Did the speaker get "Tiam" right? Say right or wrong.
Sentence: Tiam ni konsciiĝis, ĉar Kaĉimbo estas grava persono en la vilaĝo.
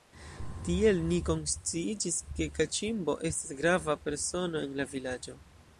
wrong